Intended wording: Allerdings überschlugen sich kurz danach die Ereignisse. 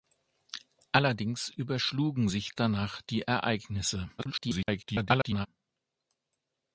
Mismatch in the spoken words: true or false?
true